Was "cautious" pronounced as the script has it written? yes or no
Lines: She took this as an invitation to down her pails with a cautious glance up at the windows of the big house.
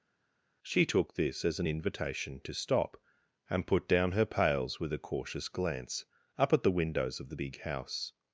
yes